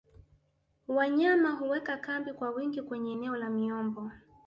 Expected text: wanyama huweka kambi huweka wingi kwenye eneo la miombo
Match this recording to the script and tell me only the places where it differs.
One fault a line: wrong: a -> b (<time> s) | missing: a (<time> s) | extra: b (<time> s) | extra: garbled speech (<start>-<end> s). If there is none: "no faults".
wrong: huweka -> kwa (2.3 s)